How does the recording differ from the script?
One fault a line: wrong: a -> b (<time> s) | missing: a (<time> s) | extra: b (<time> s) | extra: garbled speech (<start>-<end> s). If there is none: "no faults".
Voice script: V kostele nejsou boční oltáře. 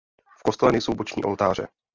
no faults